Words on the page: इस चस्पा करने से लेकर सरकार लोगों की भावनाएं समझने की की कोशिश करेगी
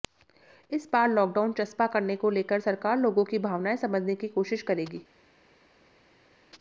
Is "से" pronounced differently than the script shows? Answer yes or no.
yes